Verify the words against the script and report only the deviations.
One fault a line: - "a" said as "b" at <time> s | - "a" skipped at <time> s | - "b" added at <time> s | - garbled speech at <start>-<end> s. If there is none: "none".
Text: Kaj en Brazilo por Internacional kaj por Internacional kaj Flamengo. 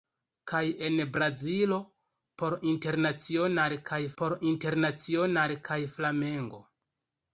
none